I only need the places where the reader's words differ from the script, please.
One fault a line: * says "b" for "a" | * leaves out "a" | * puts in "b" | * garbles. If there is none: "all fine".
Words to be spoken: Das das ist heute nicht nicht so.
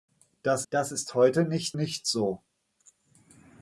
all fine